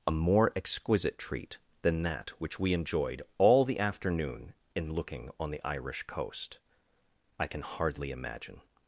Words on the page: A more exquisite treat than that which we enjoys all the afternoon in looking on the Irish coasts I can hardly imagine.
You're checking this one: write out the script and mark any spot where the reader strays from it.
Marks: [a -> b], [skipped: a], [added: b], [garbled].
A more exquisite treat than that which we [enjoys -> enjoyed] all the afternoon in looking on the Irish [coasts -> coast] I can hardly imagine.